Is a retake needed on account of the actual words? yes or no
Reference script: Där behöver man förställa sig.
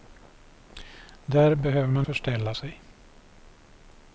no